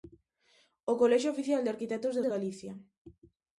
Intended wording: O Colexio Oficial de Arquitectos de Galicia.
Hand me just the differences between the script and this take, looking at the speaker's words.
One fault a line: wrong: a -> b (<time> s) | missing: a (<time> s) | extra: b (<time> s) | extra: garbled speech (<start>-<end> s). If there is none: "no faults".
extra: de (2.2 s)